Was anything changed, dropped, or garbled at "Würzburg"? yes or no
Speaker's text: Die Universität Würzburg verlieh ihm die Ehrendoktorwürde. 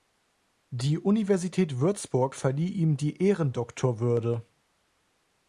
no